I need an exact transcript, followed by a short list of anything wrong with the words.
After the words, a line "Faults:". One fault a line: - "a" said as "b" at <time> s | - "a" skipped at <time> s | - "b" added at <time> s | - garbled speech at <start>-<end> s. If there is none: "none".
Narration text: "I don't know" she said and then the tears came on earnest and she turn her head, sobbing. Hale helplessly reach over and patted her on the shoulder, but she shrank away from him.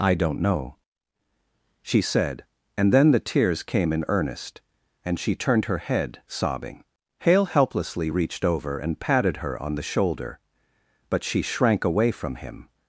"I don't know" she said and then the tears came in earnest and she turned her head, sobbing. Hale helplessly reached over and patted her on the shoulder, but she shrank away from him.
Faults:
- "on" said as "in" at 3.9 s
- "turn" said as "turned" at 5.3 s
- "reach" said as "reached" at 8.1 s